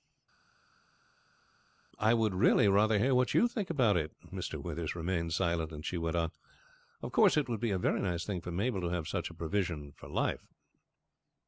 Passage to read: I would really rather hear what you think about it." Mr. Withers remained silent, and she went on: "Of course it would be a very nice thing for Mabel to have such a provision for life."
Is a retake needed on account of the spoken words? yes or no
no